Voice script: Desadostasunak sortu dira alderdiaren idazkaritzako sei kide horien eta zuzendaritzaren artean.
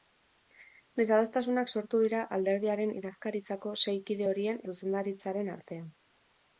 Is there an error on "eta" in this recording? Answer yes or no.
yes